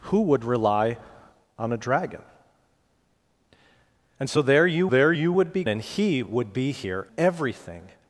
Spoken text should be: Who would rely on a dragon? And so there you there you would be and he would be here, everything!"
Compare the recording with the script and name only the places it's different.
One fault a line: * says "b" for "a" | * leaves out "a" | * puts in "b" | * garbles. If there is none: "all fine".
all fine